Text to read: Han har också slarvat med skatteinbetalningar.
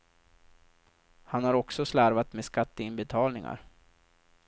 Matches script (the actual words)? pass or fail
pass